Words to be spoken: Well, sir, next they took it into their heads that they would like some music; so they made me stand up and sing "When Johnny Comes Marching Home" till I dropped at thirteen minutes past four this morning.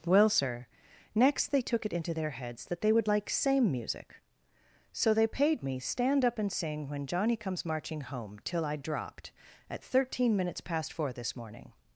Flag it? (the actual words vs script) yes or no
yes